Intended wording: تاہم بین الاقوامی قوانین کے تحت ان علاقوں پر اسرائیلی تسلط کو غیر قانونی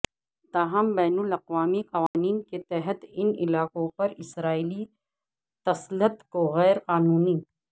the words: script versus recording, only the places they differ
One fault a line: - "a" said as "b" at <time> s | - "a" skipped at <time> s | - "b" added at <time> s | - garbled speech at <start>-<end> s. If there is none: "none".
none